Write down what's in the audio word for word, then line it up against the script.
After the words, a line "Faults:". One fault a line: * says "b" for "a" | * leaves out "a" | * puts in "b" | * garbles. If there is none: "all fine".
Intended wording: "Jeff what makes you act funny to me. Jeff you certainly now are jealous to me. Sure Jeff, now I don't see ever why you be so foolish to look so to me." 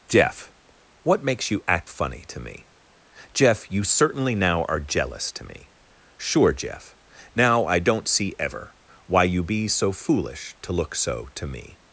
"Jeff what makes you act funny to me. Jeff you certainly now are jealous to me. Sure Jeff, now I don't see ever why you be so foolish to look so to me."
Faults:
all fine